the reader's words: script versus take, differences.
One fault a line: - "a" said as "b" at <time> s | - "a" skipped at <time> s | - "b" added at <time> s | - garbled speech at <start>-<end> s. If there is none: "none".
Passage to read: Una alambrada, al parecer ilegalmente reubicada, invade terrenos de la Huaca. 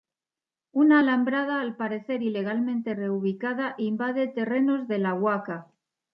none